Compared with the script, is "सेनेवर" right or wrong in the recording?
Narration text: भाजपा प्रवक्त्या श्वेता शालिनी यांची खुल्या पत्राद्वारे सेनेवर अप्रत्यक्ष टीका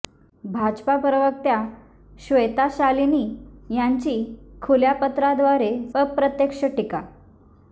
wrong